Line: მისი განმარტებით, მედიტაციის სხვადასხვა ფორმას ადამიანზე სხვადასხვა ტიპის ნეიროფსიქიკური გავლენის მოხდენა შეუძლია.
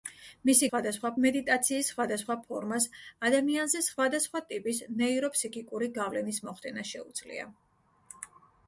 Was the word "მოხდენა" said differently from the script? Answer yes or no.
no